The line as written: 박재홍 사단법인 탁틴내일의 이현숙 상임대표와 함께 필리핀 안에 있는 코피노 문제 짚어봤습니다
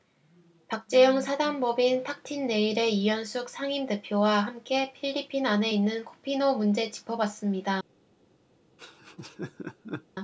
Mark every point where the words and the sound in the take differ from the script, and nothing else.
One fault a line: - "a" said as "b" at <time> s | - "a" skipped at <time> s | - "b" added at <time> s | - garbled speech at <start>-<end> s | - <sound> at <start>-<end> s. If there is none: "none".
- laugh at 8.8-10.1 s